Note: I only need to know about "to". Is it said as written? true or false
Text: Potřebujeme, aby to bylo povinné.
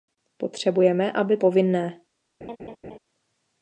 false